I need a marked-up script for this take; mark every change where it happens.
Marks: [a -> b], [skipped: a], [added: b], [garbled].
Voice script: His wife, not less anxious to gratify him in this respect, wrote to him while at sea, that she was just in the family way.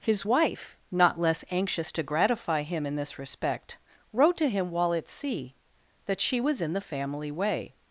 His wife, not less anxious to gratify him in this respect, wrote to him while at sea, that she was [skipped: just] in the family way.